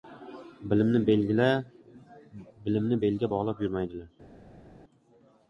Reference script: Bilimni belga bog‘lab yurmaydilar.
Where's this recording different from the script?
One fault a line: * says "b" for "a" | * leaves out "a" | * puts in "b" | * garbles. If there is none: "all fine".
all fine